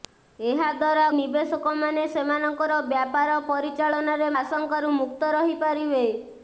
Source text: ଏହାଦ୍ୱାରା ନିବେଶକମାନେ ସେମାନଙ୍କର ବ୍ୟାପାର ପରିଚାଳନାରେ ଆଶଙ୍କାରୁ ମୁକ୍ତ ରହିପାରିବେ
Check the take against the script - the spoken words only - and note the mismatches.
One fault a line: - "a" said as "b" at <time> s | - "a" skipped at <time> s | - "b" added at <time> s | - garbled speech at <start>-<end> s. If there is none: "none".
none